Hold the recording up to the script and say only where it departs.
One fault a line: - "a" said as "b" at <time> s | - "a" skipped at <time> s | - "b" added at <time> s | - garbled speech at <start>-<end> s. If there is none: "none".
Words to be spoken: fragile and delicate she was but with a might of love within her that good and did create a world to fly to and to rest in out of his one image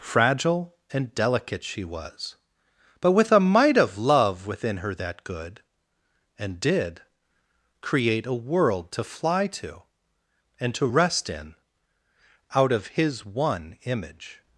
none